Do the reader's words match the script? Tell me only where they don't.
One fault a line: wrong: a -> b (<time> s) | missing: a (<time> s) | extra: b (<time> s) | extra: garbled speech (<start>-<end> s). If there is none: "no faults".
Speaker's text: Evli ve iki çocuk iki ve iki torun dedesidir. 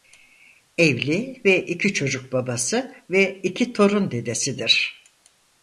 wrong: iki -> babası (2.3 s)